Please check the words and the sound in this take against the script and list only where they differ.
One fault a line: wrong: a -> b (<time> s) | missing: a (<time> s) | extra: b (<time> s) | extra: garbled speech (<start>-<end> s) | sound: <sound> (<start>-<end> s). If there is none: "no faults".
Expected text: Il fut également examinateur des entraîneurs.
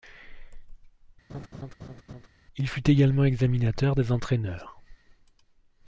sound: laugh (1.3-2.3 s)